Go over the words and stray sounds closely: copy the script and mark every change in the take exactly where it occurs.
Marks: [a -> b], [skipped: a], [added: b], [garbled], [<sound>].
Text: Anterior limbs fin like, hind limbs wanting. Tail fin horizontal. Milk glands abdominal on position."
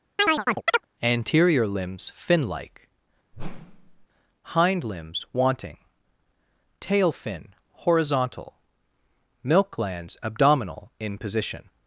[chirp] Anterior limbs fin like, [whoosh] hind limbs wanting. Tail fin horizontal. Milk glands abdominal [on -> in] position."